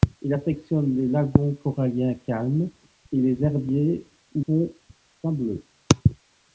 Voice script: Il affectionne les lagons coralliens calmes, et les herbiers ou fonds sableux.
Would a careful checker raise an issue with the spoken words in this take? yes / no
no